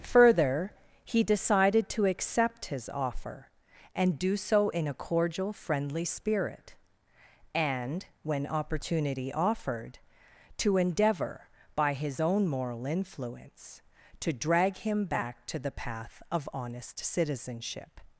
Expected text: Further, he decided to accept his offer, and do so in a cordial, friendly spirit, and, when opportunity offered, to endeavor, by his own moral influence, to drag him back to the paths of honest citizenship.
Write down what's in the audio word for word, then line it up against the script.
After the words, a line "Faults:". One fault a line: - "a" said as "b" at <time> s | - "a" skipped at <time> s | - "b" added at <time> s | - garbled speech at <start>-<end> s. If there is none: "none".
Further, he decided to accept his offer, and do so in a cordial, friendly spirit, and, when opportunity offered, to endeavor, by his own moral influence, to drag him back to the path of honest citizenship.
Faults:
- "paths" said as "path" at 15.7 s